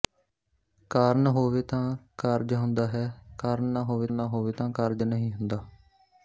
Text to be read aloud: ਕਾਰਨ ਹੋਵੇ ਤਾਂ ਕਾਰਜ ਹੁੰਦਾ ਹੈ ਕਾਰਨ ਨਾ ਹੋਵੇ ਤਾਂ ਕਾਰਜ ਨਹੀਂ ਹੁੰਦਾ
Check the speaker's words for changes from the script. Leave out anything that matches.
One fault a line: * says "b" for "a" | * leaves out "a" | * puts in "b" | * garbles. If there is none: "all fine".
* puts in "ਨਾ ਹੋਵੇ"